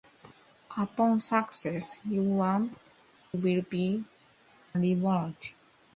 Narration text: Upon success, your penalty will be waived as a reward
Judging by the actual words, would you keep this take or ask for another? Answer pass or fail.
fail